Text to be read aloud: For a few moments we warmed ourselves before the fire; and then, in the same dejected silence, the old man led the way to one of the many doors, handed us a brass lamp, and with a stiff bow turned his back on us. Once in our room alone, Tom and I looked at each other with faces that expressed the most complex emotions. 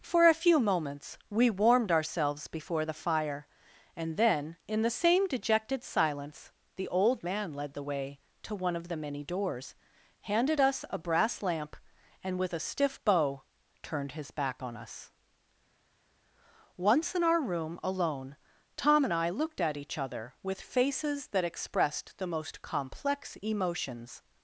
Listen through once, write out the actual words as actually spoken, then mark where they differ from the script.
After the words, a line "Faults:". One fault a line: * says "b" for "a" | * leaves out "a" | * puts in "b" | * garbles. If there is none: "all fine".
For a few moments we warmed ourselves before the fire; and then, in the same dejected silence, the old man led the way to one of the many doors, handed us a brass lamp, and with a stiff bow turned his back on us. Once in our room alone, Tom and I looked at each other with faces that expressed the most complex emotions.
Faults:
all fine